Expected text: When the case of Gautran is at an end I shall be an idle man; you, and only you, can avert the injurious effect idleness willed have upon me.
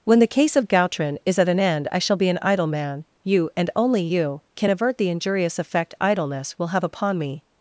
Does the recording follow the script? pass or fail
fail